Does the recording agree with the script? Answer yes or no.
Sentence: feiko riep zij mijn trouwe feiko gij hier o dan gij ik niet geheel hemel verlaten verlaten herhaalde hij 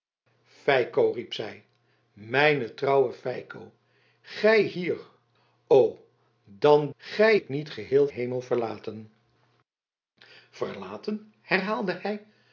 yes